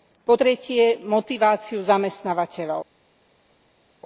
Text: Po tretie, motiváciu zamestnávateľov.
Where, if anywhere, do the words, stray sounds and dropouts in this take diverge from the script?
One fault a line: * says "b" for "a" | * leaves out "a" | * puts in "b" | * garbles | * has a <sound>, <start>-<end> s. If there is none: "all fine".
all fine